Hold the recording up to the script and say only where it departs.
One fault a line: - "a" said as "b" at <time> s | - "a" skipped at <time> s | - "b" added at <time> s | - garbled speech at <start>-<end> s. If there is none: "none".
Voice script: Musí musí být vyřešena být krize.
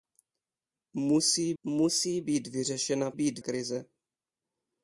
none